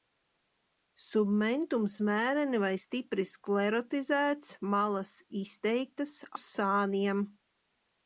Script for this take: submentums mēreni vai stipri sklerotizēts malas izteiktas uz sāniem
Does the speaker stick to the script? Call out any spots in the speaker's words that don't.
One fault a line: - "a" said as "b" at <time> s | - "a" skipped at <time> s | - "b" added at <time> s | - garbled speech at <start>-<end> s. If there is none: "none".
none